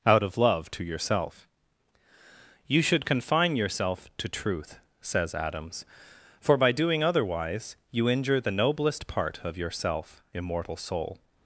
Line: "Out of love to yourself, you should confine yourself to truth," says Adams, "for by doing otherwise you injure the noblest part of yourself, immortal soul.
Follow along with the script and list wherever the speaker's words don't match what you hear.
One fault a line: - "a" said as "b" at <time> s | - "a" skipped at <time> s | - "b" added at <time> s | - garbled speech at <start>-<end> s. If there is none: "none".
none